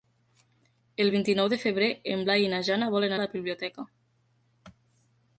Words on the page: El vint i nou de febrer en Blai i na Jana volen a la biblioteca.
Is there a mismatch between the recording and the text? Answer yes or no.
no